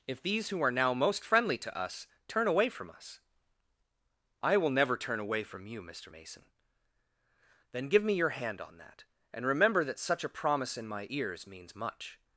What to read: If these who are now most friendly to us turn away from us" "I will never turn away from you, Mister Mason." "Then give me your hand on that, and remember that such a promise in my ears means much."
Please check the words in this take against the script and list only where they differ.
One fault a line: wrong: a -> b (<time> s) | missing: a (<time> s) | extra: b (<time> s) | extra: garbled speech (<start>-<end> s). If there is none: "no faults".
no faults